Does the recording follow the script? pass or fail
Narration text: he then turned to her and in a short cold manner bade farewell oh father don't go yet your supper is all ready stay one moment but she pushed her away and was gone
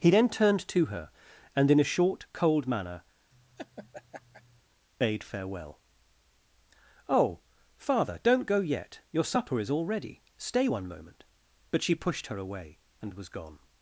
pass